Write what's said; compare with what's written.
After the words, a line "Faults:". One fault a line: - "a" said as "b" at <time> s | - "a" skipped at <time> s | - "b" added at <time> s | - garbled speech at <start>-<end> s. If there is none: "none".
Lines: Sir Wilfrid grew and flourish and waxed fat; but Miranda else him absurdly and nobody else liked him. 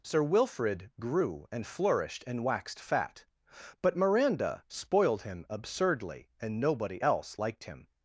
Sir Wilfrid grew and flourished and waxed fat; but Miranda spoiled him absurdly and nobody else liked him.
Faults:
- "flourish" said as "flourished" at 1.7 s
- "else" said as "spoiled" at 4.7 s